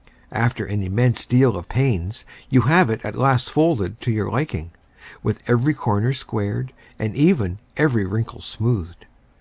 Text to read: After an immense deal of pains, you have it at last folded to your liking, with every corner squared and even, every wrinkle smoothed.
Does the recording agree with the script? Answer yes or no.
yes